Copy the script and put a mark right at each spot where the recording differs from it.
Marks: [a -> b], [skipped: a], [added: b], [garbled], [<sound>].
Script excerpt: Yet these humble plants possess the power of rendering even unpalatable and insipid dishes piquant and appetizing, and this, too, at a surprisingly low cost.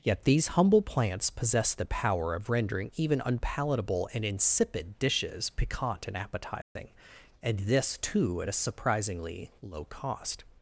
Yet these humble plants possess the power of rendering even unpalatable and insipid dishes piquant and appetizing, [dropout] and this, too, at a surprisingly low cost.